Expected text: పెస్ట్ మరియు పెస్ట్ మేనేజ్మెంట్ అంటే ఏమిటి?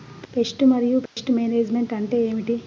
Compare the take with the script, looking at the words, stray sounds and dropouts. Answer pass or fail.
fail